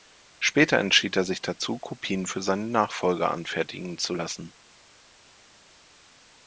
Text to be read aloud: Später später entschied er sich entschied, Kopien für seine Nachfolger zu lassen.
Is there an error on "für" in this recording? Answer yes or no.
no